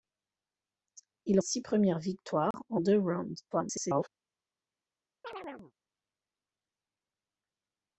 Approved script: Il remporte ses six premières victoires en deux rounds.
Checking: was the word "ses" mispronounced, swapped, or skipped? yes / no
yes